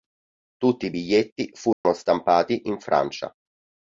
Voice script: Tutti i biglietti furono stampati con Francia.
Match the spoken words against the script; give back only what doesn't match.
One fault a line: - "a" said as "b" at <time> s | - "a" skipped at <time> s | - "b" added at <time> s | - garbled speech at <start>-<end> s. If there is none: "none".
- "con" said as "in" at 2.7 s